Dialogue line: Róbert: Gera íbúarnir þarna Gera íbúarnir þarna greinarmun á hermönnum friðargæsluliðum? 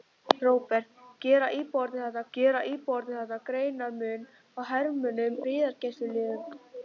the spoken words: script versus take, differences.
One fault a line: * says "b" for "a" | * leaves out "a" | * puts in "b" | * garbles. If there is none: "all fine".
all fine